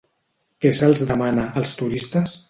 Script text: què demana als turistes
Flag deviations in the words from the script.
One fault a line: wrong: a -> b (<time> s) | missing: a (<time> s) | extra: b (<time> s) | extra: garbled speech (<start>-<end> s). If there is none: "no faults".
extra: se'ls (0.8 s)